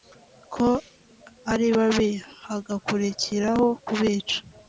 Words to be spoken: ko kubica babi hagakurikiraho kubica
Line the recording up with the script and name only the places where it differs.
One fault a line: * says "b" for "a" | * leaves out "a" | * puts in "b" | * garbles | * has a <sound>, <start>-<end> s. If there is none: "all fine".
* says "ari" for "kubica"